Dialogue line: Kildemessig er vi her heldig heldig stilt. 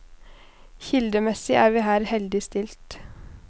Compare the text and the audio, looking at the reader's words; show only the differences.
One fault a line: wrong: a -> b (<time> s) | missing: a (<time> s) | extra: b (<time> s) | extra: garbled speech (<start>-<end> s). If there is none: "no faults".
missing: heldig (2.4 s)